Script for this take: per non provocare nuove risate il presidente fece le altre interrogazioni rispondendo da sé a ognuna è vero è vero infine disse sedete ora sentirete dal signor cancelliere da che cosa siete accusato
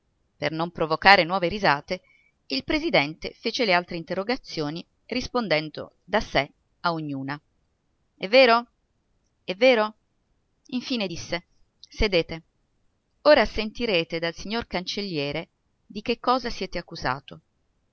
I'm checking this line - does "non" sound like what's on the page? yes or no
yes